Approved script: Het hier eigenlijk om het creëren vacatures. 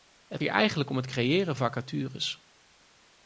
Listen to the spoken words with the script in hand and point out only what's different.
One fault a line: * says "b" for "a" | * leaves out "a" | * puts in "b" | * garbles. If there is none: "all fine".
all fine